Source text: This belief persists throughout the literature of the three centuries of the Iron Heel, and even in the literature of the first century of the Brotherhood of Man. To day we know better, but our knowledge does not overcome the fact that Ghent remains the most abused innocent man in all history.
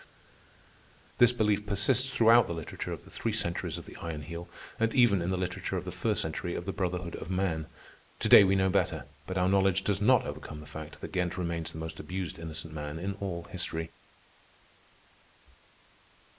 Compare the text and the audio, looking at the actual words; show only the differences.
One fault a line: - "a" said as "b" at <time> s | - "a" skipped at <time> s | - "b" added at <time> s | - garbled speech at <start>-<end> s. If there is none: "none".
none